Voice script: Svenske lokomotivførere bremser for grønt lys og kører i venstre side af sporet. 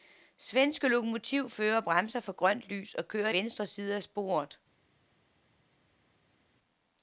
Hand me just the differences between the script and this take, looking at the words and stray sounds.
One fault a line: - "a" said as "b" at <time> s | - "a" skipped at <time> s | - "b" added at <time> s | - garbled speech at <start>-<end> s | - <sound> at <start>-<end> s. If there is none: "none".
- "i" skipped at 3.3 s